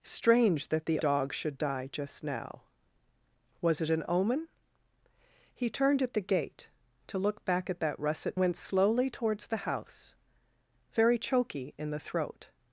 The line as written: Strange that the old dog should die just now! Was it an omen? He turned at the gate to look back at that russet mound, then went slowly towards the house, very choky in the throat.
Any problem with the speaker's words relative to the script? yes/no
yes